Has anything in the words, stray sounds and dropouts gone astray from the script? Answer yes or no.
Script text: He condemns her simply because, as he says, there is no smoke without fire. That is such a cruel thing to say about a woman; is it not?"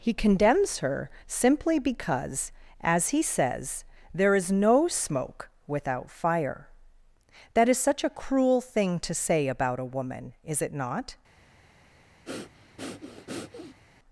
yes